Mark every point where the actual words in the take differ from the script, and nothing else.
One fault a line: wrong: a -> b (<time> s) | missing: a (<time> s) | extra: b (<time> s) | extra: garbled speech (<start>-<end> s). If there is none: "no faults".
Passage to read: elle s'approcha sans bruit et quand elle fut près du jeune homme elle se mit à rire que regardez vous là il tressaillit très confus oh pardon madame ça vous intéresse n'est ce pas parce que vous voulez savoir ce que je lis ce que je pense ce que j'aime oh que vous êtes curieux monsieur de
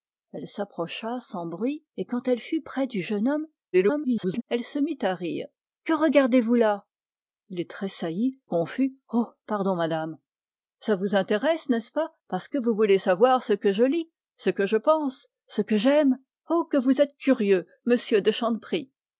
extra: garbled speech (3.7-4.4 s)
missing: très (8.4 s)